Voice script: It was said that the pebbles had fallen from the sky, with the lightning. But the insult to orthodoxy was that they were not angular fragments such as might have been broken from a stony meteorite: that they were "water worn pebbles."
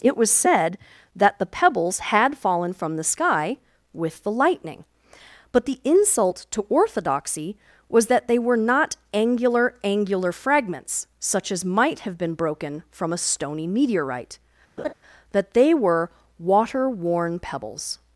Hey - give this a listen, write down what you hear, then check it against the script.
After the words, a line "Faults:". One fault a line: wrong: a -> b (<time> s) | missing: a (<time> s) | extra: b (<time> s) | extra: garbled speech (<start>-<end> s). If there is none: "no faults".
It was said that the pebbles had fallen from the sky, with the lightning. But the insult to orthodoxy was that they were not angular angular fragments such as might have been broken from a stony meteorite: that they were "water worn pebbles."
Faults:
extra: angular (9.8 s)